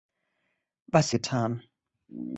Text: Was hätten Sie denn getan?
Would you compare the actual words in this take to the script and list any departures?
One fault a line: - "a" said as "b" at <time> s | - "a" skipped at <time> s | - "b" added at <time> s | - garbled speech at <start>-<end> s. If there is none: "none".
- "hätten Sie denn" skipped at 1.1 s